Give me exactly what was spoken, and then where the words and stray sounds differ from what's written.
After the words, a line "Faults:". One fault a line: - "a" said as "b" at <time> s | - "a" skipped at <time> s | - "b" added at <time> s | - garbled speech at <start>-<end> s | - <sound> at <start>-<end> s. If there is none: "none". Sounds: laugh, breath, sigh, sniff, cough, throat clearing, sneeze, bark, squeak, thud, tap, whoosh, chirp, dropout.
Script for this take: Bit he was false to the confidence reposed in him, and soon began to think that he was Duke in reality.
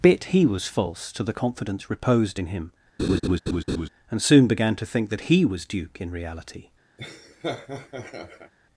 Bit he was false to the confidence reposed in him, and soon began to think that he was Duke in reality.
Faults:
- laugh at 3.0-3.9 s
- laugh at 7.0-8.5 s